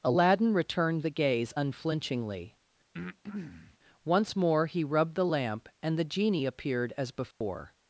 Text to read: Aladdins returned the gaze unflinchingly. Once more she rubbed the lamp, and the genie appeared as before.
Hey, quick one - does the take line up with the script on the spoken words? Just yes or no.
no